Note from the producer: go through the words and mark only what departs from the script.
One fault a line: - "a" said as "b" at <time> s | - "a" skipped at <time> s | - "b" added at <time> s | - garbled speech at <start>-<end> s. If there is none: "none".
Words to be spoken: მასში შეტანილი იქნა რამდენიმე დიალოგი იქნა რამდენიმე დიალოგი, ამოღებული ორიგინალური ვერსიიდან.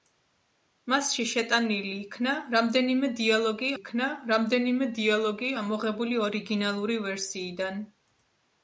none